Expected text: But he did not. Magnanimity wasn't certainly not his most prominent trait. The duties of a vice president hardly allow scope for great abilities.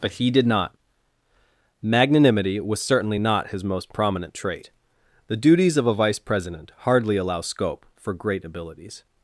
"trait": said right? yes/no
yes